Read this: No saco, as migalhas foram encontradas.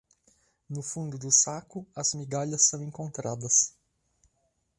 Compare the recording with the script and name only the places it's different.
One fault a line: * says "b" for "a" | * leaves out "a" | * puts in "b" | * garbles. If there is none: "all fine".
* puts in "fundo do"
* says "são" for "foram"